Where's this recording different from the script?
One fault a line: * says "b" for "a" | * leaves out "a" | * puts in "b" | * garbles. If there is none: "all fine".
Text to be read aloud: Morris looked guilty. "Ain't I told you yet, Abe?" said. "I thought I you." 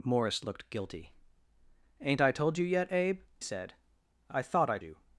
all fine